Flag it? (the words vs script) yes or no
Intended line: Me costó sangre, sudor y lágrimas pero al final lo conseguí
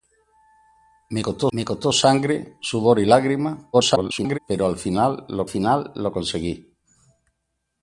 yes